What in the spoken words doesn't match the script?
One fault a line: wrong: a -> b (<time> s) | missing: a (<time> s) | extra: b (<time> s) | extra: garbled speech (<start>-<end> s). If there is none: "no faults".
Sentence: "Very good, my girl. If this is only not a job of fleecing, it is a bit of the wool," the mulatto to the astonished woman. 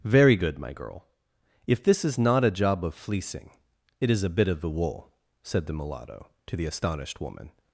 missing: only (2.2 s)
extra: said (5.4 s)